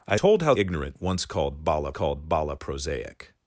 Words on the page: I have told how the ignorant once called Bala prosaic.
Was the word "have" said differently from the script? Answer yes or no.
yes